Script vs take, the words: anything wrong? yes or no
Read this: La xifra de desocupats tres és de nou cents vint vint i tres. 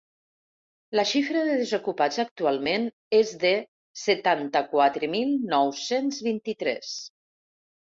yes